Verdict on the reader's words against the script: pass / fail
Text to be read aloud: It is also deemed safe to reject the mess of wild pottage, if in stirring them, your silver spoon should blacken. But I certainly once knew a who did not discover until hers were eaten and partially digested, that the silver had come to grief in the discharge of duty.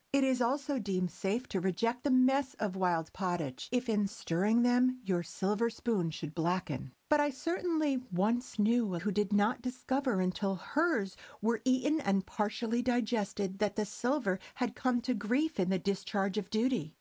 pass